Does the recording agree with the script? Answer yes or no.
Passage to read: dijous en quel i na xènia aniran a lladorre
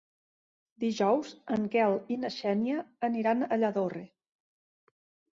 yes